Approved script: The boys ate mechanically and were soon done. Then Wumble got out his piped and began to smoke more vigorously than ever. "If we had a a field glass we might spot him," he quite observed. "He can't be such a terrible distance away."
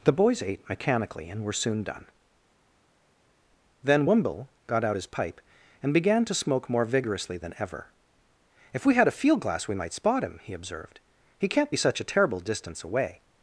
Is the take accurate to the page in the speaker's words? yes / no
no